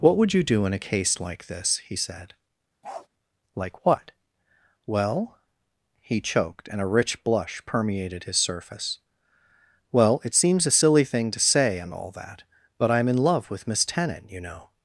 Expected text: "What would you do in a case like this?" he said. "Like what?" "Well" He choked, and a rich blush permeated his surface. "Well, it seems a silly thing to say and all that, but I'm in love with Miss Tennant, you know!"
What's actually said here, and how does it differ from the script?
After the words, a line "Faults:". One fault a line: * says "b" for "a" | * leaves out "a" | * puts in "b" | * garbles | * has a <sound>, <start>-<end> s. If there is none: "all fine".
"What would you do in a case like this?" he said. "Like what?" "Well" He choked, and a rich blush permeated his surface. "Well, it seems a silly thing to say and all that, but I'm in love with Miss Tennant, you know!"
Faults:
* has a bark, 2.8-3.1 s